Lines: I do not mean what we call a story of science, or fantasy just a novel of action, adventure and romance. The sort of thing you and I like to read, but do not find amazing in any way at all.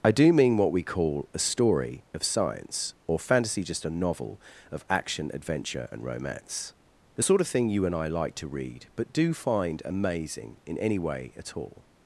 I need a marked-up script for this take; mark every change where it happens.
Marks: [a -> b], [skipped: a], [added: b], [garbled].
I do [skipped: not] mean what we call a story of science, or fantasy just a novel of action, adventure and romance. The sort of thing you and I like to read, but do [skipped: not] find amazing in any way at all.